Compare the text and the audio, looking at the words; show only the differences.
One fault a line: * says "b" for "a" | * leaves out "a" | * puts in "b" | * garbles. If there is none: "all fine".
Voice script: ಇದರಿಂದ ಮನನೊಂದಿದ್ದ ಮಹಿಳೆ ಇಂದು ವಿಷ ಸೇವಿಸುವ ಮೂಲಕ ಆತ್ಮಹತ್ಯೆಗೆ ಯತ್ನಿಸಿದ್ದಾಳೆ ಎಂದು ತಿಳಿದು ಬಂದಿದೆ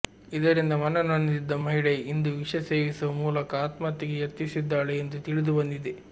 all fine